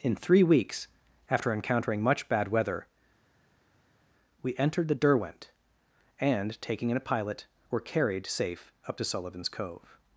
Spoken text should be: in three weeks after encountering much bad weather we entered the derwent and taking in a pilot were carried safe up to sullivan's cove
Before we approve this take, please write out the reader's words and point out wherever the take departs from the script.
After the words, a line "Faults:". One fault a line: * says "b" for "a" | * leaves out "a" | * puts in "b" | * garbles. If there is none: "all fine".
in three weeks after encountering much bad weather we entered the derwent and taking in a pilot were carried safe up to sullivan's cove
Faults:
all fine